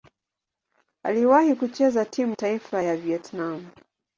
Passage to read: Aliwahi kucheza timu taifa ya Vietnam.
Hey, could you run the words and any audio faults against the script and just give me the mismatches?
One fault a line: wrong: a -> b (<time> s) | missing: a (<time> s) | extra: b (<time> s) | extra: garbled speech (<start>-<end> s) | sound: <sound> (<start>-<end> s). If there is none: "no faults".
no faults